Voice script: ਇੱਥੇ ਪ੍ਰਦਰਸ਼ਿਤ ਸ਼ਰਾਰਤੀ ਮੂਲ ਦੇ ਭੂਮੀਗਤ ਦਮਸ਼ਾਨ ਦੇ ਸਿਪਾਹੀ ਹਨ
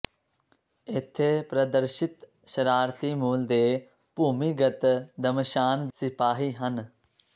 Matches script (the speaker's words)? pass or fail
fail